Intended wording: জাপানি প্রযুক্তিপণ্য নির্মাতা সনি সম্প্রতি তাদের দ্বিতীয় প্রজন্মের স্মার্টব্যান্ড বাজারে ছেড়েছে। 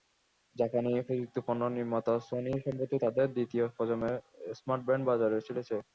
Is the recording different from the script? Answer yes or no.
no